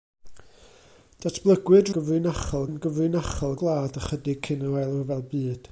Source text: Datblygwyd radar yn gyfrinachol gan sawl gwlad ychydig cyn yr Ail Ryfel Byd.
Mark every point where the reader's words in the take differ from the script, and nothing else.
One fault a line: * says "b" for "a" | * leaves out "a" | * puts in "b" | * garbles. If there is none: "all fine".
* says "gyfrinachol" for "radar"
* leaves out "gan sawl"